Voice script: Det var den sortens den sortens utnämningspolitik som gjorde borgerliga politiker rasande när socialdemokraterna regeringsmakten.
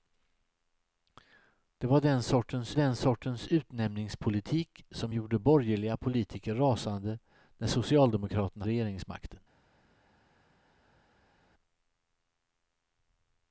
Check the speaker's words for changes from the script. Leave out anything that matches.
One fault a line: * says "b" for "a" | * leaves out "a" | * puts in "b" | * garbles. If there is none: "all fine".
all fine